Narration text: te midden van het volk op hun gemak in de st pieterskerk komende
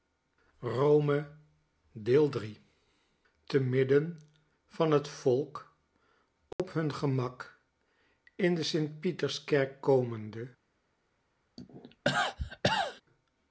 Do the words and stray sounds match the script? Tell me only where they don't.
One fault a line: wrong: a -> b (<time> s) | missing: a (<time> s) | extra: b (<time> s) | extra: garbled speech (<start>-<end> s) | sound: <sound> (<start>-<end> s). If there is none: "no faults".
sound: dropout (6.5-6.6 s)
sound: cough (11.6-13.0 s)